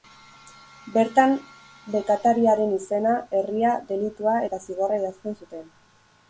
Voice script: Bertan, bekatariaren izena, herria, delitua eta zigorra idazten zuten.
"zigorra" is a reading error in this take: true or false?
false